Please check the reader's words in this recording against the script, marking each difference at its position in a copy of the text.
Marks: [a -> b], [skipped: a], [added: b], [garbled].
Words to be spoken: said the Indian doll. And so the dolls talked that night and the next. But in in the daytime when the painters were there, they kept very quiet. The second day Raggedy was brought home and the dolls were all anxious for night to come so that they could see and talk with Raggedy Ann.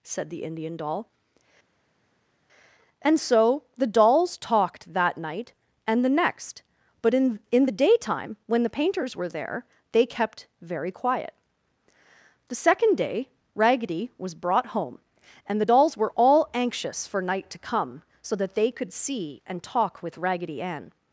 said the Indian doll. And so the dolls talked that night and the next. But in in the daytime when the painters were there, they kept very quiet. The second day Raggedy was brought home and the dolls were all anxious for night to come so that they could see and talk with Raggedy Ann.